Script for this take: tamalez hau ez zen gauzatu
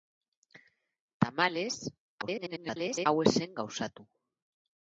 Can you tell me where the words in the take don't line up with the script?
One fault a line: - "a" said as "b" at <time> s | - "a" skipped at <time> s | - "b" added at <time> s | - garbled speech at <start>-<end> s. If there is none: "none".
- garbled speech at 2.2-3.1 s